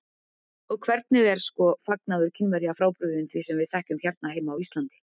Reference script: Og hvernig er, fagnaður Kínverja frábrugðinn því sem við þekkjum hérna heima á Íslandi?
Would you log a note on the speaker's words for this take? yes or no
yes